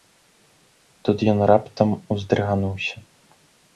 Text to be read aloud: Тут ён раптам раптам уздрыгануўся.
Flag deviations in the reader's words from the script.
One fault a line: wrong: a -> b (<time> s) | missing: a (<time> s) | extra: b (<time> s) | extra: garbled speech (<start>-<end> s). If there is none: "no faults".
missing: раптам (1.9 s)